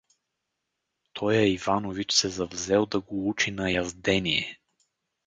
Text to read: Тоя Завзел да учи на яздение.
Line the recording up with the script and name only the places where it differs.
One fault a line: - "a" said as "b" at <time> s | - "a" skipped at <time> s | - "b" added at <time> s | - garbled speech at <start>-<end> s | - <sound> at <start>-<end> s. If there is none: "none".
- "Иванович се" added at 1.5 s
- "го" added at 3.0 s